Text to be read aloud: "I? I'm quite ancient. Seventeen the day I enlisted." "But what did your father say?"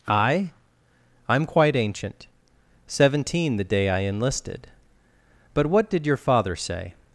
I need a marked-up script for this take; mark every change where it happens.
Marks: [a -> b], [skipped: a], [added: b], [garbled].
"I? I'm quite ancient. Seventeen the day I enlisted." "But what did your father say?"